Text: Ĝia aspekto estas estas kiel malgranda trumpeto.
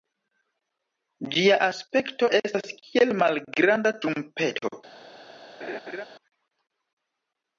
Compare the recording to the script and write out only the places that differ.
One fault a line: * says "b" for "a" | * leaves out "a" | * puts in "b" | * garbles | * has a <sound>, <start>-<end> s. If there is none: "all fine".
* leaves out "estas"
* has a laugh, 5.6-6.1 s